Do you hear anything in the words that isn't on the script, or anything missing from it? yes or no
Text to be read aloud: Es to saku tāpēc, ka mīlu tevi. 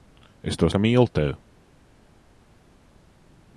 yes